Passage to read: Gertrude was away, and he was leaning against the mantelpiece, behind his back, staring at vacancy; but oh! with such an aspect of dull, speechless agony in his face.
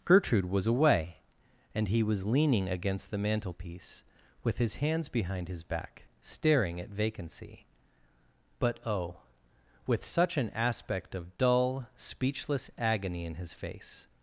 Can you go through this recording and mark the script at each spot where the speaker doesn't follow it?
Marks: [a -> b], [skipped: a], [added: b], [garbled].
Gertrude was away, and he was leaning against the mantelpiece, [added: with his hands] behind his back, staring at vacancy; but oh! with such an aspect of dull, speechless agony in his face.